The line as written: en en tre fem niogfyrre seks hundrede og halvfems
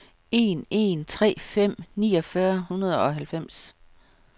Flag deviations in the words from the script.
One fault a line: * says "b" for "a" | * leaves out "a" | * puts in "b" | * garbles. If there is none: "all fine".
* leaves out "seks"